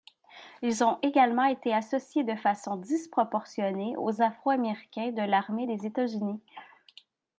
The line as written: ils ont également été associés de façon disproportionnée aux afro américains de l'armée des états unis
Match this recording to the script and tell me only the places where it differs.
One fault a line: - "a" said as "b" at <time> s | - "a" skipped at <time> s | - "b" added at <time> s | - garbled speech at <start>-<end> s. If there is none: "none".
none